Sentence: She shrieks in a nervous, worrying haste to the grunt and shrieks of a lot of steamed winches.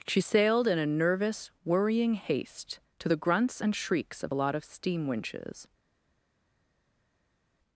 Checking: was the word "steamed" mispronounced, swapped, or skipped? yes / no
yes